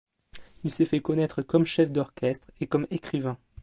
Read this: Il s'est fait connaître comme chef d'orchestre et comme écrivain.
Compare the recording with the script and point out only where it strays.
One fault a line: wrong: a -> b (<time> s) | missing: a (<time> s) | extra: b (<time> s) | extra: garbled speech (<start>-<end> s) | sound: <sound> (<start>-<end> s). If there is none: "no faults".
no faults